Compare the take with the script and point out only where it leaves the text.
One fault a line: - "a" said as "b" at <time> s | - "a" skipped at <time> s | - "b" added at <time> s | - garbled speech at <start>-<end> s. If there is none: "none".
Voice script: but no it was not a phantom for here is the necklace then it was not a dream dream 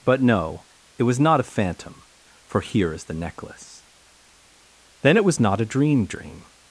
none